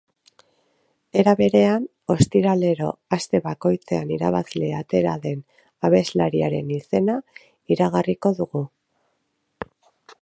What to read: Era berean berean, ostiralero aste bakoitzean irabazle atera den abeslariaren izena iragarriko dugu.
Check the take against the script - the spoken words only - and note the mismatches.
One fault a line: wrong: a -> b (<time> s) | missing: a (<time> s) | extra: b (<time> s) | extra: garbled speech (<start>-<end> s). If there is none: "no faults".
missing: berean (1.8 s)